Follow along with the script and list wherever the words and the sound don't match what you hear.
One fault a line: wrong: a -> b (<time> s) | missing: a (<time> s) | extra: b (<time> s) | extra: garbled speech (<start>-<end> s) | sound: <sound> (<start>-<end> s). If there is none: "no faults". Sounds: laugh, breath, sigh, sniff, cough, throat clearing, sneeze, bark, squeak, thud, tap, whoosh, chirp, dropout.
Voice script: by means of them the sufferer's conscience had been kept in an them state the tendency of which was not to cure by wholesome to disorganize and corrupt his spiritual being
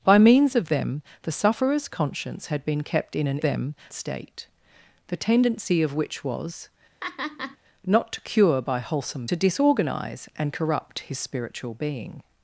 sound: laugh (7.0-7.6 s)